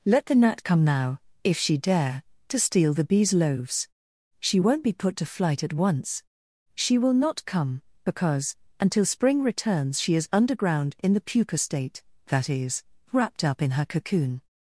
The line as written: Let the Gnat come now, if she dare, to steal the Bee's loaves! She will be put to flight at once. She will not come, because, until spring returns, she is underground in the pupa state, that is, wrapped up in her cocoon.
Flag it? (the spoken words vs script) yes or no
yes